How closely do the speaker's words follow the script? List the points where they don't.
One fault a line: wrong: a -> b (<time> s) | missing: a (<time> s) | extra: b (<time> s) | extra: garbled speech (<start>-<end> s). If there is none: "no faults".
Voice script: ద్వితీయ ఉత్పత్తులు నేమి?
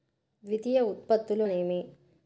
no faults